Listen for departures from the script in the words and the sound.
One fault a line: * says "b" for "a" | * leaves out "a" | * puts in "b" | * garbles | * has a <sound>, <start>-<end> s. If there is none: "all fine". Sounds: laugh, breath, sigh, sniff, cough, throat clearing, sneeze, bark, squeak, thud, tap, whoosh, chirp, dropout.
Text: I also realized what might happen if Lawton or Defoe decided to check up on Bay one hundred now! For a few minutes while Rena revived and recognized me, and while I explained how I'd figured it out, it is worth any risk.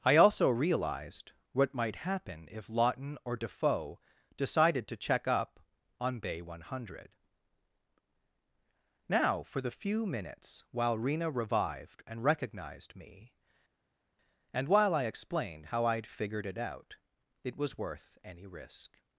* says "the" for "a"
* says "was" for "is"